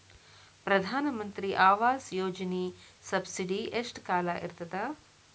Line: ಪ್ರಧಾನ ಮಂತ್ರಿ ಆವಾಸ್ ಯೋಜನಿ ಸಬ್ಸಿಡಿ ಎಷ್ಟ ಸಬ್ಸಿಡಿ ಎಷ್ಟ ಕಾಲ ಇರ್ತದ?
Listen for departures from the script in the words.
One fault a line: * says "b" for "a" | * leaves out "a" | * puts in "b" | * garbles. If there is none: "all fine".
* leaves out "ಸಬ್ಸಿಡಿ ಎಷ್ಟ"